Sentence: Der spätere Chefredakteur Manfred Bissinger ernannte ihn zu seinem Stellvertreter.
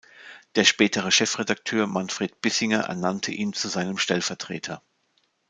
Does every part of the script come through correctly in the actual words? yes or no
yes